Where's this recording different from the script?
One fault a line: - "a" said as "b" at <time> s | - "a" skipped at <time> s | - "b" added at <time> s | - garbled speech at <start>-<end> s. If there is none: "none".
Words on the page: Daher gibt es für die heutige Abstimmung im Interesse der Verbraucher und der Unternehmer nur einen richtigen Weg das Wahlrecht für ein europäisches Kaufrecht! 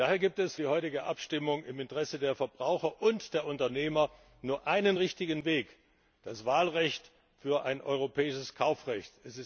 - "für" skipped at 0.6 s